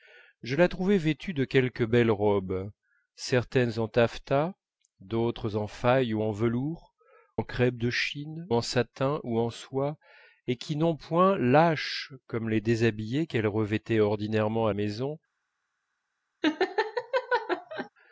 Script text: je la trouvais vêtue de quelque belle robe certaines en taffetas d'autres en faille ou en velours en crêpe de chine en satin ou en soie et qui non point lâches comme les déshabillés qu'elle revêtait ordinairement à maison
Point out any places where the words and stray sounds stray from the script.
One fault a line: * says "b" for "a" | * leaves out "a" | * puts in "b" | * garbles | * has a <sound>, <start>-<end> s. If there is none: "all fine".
* has a laugh, 16.4-17.9 s